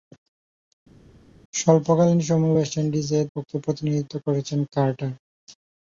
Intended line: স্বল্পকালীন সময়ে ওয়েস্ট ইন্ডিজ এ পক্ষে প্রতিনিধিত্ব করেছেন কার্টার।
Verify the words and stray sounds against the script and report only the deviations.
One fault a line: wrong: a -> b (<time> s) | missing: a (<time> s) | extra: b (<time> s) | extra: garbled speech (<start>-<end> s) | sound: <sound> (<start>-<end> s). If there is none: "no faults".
no faults